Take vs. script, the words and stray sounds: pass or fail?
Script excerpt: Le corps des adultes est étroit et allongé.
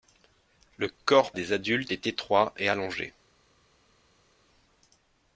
pass